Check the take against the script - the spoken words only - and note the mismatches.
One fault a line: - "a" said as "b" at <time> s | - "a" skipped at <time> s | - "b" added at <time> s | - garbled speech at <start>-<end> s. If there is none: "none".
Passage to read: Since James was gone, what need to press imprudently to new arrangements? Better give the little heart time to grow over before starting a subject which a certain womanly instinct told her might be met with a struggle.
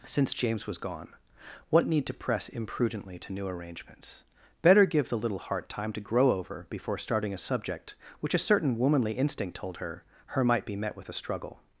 - "her" added at 10.3 s